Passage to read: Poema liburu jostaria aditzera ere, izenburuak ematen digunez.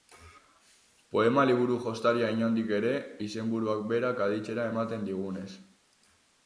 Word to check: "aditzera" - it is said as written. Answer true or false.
false